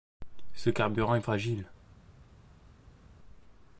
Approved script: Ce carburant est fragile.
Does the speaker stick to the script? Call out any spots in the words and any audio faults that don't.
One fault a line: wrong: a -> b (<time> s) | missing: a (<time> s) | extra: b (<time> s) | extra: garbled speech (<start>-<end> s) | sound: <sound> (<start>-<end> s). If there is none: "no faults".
no faults